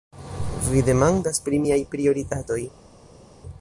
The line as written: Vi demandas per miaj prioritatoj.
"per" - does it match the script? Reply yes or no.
no